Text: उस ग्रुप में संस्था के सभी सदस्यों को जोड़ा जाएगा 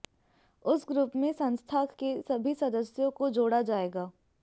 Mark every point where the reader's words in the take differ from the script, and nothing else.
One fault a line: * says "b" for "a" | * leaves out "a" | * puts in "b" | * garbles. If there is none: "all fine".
all fine